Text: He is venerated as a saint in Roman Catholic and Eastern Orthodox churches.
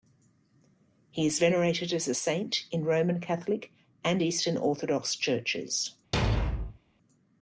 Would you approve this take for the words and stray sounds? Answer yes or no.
no